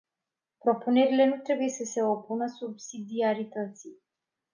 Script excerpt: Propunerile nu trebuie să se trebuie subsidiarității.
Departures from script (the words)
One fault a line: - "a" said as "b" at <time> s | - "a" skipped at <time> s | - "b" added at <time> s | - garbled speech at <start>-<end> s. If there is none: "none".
- "trebuie" said as "opună" at 2.0 s